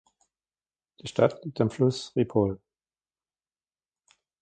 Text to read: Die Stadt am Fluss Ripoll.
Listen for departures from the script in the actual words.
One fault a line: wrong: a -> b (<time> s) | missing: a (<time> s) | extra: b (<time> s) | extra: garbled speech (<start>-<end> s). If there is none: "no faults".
extra: liegt (1.4 s)